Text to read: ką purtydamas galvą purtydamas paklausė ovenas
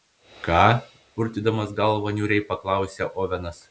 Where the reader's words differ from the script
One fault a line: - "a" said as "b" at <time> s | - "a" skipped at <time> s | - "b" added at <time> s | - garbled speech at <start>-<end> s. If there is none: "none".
- "purtydamas" said as "niūriai" at 2.2 s